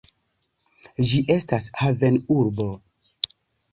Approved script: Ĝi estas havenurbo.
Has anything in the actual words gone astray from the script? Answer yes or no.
no